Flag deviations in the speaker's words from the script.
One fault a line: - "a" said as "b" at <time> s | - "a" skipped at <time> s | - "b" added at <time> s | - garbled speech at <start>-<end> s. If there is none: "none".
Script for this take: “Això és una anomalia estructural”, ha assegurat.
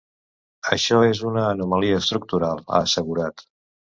none